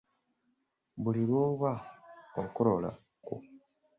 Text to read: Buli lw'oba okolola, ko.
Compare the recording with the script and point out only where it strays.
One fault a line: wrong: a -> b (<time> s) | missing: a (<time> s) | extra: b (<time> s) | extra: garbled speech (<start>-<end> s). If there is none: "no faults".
no faults